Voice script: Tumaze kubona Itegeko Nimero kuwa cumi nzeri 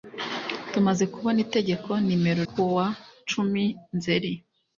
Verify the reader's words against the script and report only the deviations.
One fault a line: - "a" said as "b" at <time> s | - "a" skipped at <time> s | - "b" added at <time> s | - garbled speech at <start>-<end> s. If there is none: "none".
none